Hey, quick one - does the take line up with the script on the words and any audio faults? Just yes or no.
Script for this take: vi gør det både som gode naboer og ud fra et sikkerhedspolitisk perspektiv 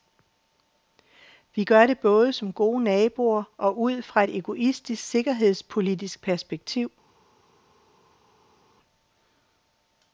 no